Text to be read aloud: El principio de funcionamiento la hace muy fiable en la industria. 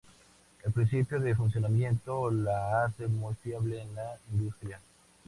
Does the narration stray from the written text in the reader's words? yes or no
no